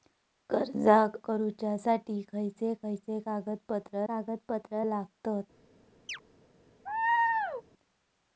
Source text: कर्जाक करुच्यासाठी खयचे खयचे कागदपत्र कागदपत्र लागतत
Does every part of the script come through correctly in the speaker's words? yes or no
yes